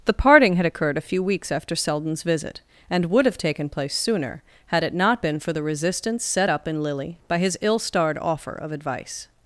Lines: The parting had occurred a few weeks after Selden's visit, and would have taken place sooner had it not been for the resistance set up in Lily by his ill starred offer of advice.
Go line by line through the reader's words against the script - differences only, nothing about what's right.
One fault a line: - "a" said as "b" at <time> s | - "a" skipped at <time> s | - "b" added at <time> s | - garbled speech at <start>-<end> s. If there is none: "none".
none